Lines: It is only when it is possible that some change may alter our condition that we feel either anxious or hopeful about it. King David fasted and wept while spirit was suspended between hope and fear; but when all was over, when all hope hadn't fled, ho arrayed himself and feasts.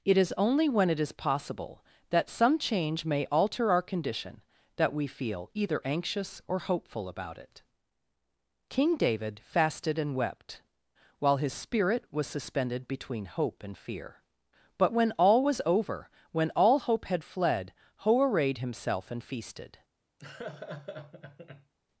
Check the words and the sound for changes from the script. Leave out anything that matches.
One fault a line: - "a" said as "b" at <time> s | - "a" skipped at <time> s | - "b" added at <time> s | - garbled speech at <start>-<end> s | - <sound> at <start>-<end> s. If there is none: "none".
- "his" added at 11.4 s
- "hadn't" said as "had" at 17.1 s
- "feasts" said as "feasted" at 19.2 s
- laugh at 20.2-21.7 s